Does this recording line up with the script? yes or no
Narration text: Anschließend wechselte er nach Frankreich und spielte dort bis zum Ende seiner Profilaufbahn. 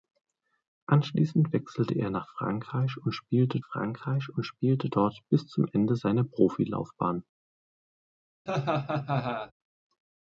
no